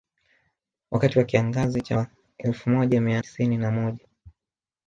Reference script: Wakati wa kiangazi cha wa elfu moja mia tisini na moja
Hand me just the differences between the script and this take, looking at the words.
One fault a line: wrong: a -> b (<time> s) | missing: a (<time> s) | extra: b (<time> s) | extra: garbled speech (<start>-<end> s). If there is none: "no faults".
no faults